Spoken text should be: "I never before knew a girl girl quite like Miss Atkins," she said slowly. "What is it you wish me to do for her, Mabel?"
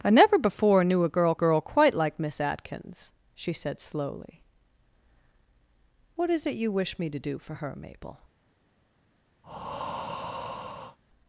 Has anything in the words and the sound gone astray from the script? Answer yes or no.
yes